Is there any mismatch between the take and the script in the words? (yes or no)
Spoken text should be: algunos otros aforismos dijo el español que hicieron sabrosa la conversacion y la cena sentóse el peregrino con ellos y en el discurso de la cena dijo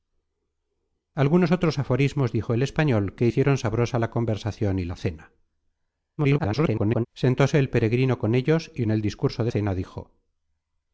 yes